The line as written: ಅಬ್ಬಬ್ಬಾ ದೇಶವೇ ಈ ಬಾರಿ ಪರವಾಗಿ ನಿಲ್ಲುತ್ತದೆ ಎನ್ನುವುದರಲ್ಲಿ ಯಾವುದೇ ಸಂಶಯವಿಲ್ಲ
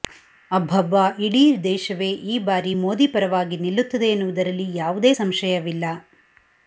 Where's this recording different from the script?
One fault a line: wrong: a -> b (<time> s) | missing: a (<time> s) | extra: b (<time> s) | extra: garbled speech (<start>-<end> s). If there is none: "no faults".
extra: ಇಡೀ (1.2 s)
extra: ಮೋದಿ (2.7 s)